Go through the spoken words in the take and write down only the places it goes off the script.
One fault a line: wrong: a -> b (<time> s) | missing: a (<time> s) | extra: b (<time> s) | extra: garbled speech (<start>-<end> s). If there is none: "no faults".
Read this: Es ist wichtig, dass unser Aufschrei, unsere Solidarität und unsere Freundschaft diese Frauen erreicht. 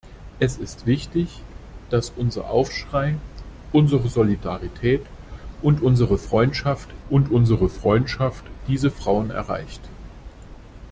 extra: und unsere Freundschaft (7.1 s)